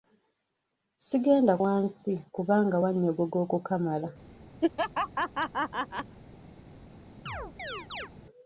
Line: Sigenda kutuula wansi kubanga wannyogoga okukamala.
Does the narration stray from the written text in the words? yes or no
yes